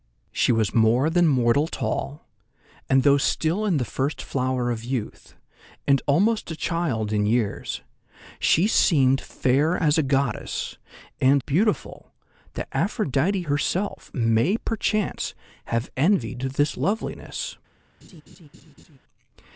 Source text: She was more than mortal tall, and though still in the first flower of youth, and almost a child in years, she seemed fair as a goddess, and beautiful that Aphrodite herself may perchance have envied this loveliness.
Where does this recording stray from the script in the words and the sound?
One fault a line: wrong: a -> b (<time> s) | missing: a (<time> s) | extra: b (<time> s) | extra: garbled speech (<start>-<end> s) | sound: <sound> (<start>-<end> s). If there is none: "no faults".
sound: laugh (18.0-19.0 s)